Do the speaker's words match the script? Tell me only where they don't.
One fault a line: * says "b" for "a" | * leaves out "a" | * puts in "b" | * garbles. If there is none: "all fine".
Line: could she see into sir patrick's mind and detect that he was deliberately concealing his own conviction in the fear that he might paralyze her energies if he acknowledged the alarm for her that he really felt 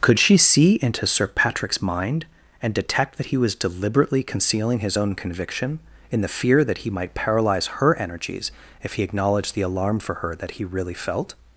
all fine